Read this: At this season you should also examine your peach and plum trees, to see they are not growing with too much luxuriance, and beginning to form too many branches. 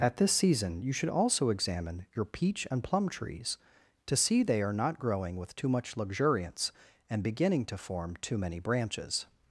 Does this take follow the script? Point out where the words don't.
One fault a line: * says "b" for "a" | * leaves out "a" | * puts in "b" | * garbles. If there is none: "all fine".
all fine